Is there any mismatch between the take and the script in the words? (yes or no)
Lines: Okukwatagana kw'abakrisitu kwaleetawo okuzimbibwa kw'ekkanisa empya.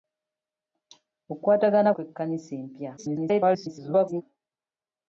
yes